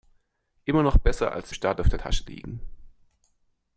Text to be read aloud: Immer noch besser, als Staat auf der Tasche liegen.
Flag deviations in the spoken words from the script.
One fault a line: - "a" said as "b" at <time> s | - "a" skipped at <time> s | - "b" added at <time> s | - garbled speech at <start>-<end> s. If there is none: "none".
none